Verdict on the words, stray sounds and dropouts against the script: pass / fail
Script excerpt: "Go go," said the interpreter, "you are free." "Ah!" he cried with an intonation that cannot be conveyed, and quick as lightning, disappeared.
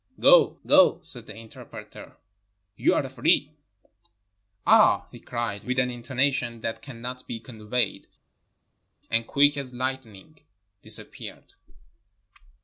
pass